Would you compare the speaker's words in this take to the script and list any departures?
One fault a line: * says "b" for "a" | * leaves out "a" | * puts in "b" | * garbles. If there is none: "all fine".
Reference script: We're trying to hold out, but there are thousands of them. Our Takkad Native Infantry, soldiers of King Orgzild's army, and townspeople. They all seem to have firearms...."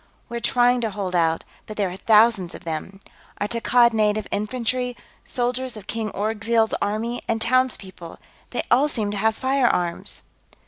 all fine